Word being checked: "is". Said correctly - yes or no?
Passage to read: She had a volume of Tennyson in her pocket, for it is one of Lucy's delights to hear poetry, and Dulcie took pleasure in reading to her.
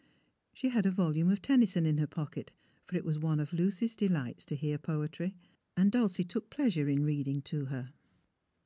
no